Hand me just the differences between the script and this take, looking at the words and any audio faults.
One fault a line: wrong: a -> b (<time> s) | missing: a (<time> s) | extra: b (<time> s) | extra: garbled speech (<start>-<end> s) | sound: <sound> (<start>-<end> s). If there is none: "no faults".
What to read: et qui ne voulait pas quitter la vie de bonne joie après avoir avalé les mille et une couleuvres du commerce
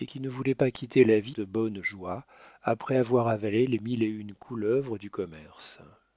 no faults